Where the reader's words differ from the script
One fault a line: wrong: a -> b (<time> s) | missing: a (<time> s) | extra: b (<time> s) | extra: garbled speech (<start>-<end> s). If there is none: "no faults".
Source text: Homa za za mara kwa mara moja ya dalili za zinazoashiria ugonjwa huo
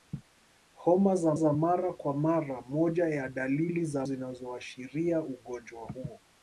no faults